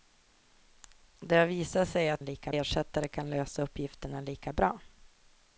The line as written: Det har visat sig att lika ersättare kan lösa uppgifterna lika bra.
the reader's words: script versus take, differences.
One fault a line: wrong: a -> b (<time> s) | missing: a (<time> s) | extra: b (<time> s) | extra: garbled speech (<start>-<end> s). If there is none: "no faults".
no faults